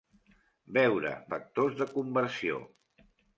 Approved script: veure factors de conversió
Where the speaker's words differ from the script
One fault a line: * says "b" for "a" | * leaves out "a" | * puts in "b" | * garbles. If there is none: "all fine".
all fine